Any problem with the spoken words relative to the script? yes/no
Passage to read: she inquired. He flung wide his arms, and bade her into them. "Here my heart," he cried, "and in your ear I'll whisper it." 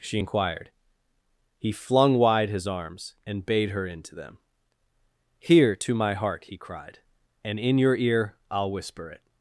yes